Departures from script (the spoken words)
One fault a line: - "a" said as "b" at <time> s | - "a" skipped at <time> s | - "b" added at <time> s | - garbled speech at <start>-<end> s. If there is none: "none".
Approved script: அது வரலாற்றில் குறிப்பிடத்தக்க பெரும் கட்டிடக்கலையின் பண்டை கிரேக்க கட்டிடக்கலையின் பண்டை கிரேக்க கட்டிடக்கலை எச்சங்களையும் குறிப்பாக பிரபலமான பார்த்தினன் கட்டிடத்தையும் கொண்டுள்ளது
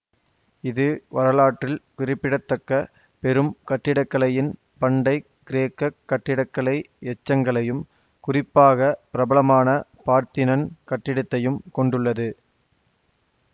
- "அது" said as "இது" at 0.6 s
- "கட்டிடக்கலையின் பண்டை கிரேக்க" skipped at 5.9 s